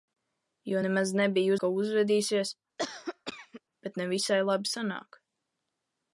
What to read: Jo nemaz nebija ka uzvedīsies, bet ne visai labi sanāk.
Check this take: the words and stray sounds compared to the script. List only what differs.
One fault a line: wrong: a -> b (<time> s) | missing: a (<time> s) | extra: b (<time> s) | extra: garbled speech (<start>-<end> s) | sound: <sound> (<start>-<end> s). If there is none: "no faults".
sound: cough (2.8-3.6 s)